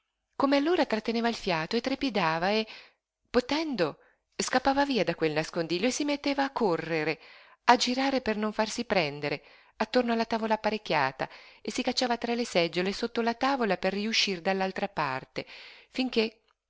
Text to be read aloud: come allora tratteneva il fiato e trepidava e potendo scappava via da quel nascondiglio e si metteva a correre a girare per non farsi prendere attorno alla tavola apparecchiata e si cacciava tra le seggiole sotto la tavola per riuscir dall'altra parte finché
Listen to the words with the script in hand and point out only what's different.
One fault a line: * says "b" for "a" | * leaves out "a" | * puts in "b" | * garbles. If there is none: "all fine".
all fine